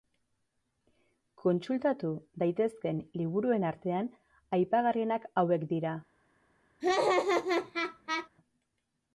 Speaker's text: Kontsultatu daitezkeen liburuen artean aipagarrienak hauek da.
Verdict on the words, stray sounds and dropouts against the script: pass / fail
fail